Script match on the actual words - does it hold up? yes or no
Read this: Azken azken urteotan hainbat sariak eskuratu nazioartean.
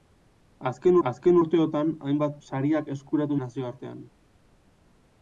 yes